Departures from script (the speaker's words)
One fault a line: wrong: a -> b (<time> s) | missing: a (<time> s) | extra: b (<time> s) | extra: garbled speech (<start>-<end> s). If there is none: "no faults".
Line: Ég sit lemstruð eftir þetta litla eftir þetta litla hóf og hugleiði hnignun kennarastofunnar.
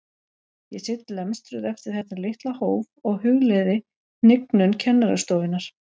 missing: eftir þetta litla (2.5 s)